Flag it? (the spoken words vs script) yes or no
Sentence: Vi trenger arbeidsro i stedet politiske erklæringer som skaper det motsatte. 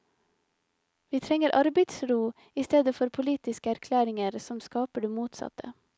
yes